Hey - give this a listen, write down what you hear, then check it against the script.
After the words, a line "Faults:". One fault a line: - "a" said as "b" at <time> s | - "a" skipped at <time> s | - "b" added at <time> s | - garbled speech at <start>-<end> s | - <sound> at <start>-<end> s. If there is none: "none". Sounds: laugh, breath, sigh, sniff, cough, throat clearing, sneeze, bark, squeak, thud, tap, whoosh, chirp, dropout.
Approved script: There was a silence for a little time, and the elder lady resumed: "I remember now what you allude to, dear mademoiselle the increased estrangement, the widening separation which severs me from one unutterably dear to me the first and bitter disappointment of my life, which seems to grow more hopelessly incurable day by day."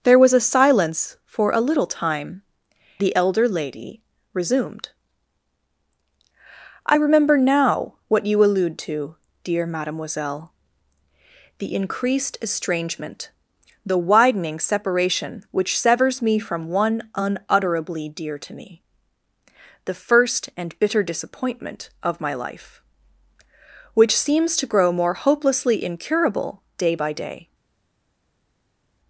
There was a silence for a little time, the elder lady resumed: "I remember now what you allude to, dear mademoiselle the increased estrangement, the widening separation which severs me from one unutterably dear to me the first and bitter disappointment of my life, which seems to grow more hopelessly incurable day by day."
Faults:
- "and" skipped at 2.4 s